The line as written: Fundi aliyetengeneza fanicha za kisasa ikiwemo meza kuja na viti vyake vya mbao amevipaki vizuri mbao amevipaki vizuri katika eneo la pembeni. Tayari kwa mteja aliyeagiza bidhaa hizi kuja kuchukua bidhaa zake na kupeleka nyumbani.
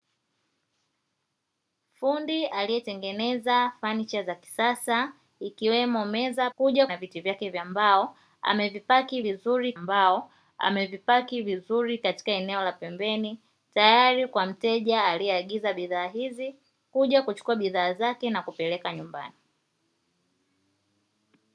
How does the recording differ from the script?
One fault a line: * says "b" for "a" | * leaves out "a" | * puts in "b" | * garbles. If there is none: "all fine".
all fine